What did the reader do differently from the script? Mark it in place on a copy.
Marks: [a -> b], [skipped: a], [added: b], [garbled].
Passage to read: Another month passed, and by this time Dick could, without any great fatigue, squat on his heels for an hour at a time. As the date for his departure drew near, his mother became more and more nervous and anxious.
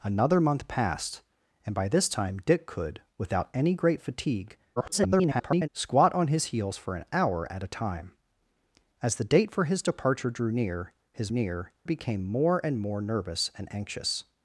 Another month passed, and by this time Dick could, without any great fatigue, [garbled] squat on his heels for an hour at a time. As the date for his departure drew near, his [mother -> near] became more and more nervous and anxious.